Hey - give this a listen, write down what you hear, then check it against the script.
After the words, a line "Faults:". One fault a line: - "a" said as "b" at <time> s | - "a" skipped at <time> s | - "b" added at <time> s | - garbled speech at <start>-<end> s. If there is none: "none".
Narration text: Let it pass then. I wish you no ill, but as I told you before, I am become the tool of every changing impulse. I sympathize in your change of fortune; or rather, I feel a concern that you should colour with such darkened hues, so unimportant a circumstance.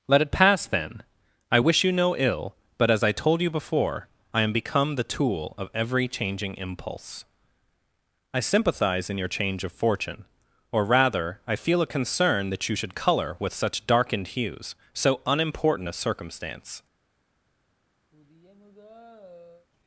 Let it pass then. I wish you no ill, but as I told you before, I am become the tool of every changing impulse. I sympathize in your change of fortune; or rather, I feel a concern that you should colour with such darkened hues, so unimportant a circumstance.
Faults:
none